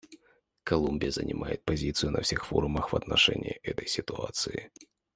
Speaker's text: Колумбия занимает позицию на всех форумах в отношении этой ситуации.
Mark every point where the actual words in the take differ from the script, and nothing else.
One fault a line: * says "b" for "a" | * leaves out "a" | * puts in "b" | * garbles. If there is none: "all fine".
all fine